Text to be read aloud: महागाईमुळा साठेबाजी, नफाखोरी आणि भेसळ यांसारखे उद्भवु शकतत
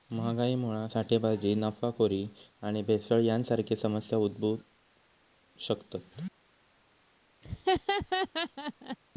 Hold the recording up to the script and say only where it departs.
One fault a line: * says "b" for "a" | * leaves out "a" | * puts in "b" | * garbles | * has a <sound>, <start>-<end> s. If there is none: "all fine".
* puts in "समस्या"
* has a laugh, 7.4-9.0 s